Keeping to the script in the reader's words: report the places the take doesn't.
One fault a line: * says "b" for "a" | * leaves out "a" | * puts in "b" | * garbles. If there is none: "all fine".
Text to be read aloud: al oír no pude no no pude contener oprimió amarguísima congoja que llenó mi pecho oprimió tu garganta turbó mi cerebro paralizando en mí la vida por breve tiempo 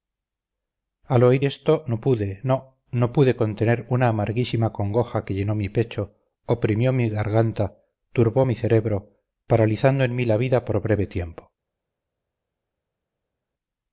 * puts in "esto"
* says "una" for "oprimió"
* says "mi" for "tu"